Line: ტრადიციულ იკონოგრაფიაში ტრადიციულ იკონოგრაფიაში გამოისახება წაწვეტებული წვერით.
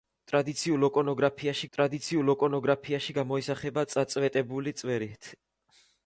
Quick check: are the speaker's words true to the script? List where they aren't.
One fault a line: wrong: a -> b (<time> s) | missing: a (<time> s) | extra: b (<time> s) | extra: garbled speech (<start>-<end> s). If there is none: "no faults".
no faults